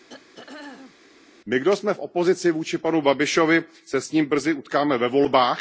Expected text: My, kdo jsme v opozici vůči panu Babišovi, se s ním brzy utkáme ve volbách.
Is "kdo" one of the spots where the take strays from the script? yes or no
no